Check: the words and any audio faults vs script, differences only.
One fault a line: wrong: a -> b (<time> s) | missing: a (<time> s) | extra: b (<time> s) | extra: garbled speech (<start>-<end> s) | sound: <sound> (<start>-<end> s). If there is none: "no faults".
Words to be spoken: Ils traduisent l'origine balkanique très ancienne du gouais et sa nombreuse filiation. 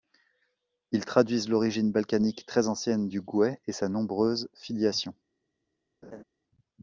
sound: laugh (6.0-6.2 s)